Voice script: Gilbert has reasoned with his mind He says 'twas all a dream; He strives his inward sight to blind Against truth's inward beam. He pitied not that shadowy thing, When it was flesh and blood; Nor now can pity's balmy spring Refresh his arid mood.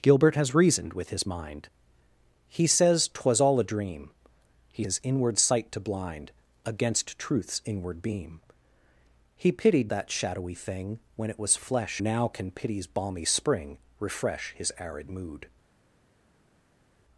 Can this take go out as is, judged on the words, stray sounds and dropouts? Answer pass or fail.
fail